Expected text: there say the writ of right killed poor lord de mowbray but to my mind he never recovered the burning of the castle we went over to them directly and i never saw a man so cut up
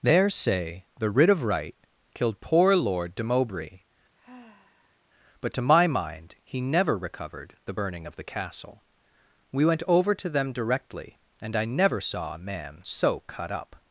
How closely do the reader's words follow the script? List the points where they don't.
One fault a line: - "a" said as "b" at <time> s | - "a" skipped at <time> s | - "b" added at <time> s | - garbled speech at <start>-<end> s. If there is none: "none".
none